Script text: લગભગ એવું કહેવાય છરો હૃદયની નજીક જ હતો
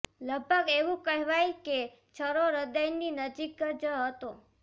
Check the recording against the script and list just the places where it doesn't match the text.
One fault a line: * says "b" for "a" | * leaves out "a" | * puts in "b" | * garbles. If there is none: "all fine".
* puts in "કે"